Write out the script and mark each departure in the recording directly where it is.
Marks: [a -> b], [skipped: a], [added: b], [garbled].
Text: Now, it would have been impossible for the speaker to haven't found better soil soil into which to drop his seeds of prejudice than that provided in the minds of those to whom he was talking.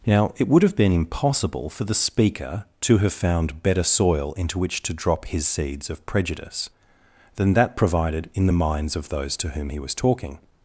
Now, it would have been impossible for the speaker to [haven't -> have] found better soil [skipped: soil] into which to drop his seeds of prejudice than that provided in the minds of those to whom he was talking.